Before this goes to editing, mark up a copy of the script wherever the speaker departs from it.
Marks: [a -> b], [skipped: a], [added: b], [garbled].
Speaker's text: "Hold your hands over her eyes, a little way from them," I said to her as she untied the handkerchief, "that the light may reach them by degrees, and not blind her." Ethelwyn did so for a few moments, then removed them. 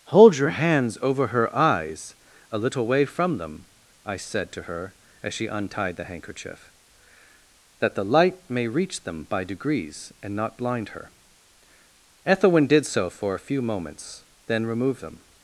"Hold your hands over her eyes, a little way from them," I said to her as she untied the handkerchief, "that the light may reach them by degrees, and not blind her." Ethelwyn did so for a few moments, then removed them.